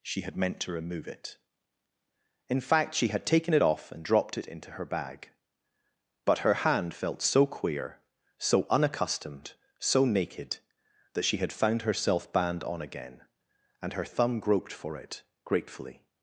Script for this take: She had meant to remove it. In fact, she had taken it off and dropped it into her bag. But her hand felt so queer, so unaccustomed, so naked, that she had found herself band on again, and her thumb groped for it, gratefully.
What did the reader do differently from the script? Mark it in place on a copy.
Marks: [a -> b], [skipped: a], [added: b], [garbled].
She had meant to remove it. In fact, she had taken it off and dropped it into her bag. But her hand felt so queer, so unaccustomed, so naked, that she had found herself band on again, and her thumb groped for it, gratefully.